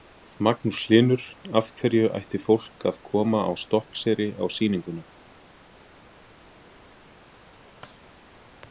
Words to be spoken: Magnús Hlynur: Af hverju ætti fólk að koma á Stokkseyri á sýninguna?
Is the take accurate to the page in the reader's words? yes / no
yes